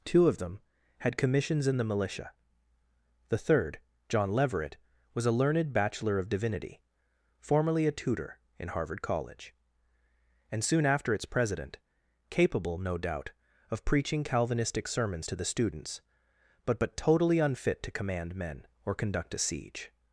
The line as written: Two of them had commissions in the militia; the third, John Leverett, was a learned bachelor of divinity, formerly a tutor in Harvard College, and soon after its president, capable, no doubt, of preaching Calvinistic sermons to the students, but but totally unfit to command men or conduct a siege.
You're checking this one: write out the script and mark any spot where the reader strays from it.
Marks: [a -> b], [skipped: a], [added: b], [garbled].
Two of them had commissions in the militia; the third, John Leverett, was a learned bachelor of divinity, formerly a tutor in Harvard College, and soon after its president, capable, no doubt, of preaching Calvinistic sermons to the students, but but totally unfit to command men or conduct a siege.